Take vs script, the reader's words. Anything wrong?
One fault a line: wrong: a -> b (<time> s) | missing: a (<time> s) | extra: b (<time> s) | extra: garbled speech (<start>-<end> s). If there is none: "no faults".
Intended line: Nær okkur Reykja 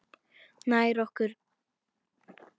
no faults